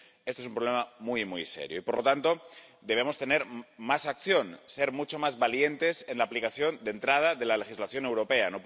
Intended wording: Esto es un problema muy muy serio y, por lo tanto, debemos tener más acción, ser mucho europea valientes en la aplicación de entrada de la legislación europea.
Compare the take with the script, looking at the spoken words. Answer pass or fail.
fail